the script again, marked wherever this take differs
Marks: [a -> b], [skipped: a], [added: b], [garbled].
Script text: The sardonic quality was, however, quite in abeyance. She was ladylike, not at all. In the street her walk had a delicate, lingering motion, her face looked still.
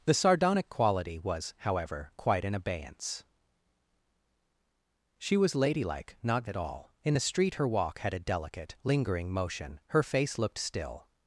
The sardonic quality was, however, quite in abeyance. She was ladylike, not at all. In the street her walk had a delicate, lingering motion, her face looked still.